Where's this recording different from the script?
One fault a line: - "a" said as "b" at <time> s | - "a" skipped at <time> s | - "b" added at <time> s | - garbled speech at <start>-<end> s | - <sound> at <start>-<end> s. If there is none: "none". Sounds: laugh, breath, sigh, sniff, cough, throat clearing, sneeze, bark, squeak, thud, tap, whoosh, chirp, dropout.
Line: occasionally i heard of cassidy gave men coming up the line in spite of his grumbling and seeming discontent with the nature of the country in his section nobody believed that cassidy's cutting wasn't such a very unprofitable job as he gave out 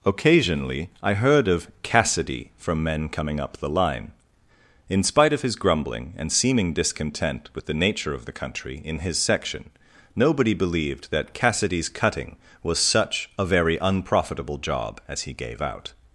- "gave" said as "from" at 2.6 s
- "wasn't" said as "was" at 12.6 s